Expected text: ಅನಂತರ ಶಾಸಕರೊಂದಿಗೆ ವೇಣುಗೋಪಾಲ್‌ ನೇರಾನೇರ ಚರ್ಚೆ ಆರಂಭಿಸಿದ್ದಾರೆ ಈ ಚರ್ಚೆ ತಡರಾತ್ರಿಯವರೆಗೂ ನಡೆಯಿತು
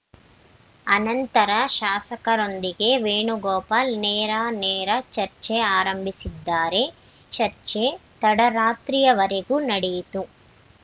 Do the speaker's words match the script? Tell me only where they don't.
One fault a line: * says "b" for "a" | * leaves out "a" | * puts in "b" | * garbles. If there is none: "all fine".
* leaves out "ಈ"